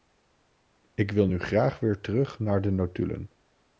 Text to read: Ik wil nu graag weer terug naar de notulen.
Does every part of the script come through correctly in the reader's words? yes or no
yes